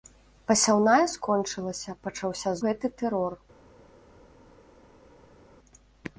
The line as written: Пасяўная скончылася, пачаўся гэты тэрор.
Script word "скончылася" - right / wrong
right